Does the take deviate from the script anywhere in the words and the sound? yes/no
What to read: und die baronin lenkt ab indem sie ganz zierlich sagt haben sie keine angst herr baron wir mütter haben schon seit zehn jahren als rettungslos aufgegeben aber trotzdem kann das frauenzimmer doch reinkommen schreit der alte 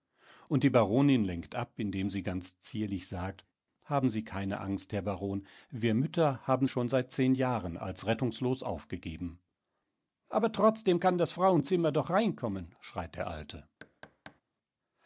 yes